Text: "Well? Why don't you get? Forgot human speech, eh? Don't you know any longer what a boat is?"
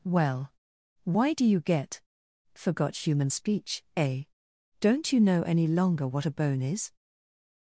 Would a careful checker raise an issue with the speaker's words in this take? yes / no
yes